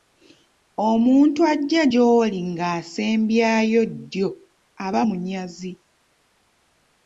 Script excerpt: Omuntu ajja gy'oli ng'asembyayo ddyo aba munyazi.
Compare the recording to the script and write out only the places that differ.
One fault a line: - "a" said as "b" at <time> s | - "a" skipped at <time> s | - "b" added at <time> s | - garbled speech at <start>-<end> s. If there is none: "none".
none